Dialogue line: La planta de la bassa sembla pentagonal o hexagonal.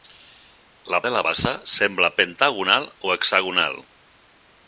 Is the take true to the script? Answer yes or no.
no